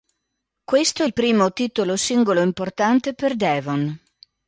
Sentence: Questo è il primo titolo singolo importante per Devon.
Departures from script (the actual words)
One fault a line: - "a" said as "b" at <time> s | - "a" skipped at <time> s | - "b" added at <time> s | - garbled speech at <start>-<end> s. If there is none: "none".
none